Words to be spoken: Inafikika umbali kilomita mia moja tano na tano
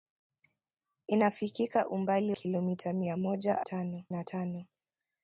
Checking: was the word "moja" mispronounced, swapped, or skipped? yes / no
no